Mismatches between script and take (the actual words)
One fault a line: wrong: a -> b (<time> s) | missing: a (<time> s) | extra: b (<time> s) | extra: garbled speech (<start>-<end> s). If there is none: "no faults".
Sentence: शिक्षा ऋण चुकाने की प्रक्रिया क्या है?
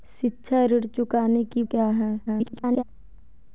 missing: प्रक्रिया (1.6 s)
extra: garbled speech (2.3-2.8 s)